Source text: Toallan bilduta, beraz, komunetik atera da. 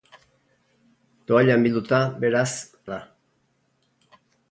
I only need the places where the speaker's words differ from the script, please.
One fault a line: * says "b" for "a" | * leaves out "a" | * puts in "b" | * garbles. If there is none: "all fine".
* leaves out "komunetik atera"